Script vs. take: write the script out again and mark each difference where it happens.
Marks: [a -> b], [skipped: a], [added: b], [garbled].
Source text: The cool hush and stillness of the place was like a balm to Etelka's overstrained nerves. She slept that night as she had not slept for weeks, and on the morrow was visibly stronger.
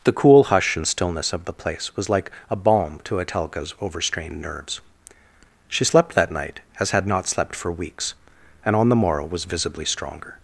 The cool hush and stillness of the place was like a balm to Etelka's overstrained nerves. She slept that night as [skipped: she] had not slept for weeks, and on the morrow was visibly stronger.